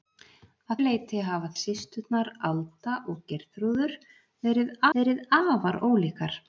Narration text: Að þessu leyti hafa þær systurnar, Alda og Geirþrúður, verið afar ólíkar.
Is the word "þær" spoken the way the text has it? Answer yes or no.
no